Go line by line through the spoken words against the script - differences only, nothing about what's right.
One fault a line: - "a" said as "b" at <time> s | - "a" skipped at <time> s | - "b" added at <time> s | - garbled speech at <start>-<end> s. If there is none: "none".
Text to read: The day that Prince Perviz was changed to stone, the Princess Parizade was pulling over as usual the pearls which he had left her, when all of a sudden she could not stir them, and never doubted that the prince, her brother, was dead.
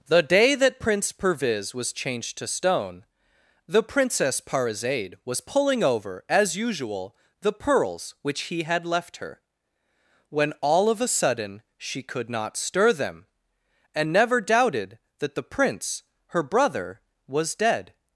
none